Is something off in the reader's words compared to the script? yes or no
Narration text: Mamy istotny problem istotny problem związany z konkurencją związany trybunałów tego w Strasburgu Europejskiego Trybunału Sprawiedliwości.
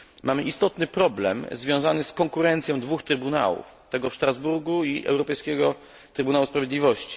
yes